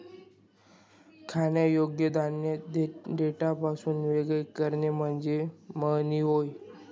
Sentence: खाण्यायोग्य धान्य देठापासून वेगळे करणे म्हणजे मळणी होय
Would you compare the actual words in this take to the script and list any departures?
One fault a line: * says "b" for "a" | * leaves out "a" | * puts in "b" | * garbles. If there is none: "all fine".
all fine